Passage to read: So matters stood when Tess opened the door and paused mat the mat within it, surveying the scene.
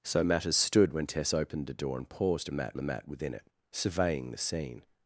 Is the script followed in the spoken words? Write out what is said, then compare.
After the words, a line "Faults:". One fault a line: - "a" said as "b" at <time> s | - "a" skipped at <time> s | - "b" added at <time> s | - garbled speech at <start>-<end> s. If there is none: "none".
So matters stood when Tess opened the door and paused mat the mat within it, surveying the scene.
Faults:
none